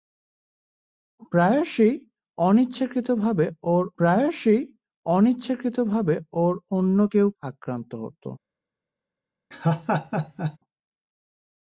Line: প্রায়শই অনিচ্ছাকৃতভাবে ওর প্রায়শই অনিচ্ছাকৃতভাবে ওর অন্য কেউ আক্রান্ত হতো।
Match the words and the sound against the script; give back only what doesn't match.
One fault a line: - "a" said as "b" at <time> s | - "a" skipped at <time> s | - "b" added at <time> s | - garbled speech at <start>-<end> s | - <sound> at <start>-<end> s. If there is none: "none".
- laugh at 9.5-10.6 s